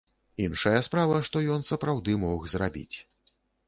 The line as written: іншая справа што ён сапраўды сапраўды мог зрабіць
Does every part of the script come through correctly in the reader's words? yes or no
no